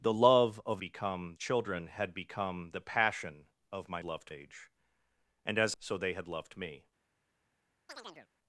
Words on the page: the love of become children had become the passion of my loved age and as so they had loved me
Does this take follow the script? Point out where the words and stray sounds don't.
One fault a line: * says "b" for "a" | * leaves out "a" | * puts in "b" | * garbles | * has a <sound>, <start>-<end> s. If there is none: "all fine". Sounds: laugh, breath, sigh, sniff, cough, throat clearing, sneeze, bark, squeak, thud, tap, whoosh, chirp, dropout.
* has a chirp, 7.9-8.3 s